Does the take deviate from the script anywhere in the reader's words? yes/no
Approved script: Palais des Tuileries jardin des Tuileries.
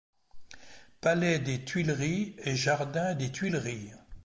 yes